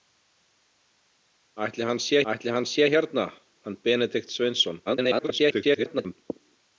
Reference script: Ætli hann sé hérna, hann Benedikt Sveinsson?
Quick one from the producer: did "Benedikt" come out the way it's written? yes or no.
yes